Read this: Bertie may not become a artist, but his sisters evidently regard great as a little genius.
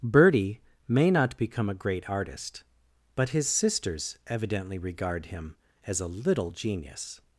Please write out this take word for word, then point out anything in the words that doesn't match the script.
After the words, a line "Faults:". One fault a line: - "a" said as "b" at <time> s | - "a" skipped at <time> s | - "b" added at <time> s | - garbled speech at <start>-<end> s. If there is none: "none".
Bertie may not become a great artist, but his sisters evidently regard him as a little genius.
Faults:
- "great" added at 1.8 s
- "great" said as "him" at 5.3 s